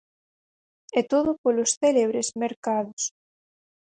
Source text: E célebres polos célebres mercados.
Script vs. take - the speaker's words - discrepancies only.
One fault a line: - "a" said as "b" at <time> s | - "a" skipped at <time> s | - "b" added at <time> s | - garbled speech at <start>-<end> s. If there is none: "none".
- "célebres" said as "todo" at 1.1 s